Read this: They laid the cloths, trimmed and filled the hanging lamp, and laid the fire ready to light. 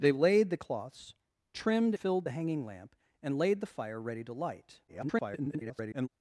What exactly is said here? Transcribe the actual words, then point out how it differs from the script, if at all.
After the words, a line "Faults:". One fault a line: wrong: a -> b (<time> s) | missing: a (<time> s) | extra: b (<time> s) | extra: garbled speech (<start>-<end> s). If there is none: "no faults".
They laid the cloths, trimmed filled the hanging lamp, and laid the fire ready to light. [garbled]
Faults:
missing: and (1.9 s)
extra: garbled speech (4.9-6.1 s)